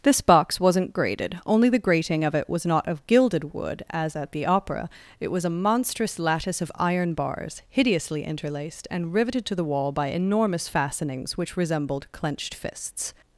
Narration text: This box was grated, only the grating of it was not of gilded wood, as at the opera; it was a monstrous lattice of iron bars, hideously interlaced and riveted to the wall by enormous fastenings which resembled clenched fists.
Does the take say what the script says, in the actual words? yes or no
no